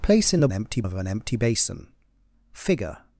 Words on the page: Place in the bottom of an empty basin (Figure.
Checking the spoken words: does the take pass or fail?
fail